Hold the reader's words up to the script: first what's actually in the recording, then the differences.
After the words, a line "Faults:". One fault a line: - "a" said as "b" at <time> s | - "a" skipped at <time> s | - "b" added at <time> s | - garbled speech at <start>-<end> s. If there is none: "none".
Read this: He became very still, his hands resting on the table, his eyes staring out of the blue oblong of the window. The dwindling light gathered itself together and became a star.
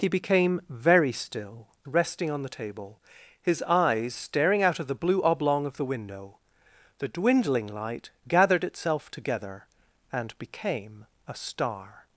He became very still, resting on the table, his eyes staring out of the blue oblong of the window. The dwindling light gathered itself together and became a star.
Faults:
- "his hands" skipped at 1.7 s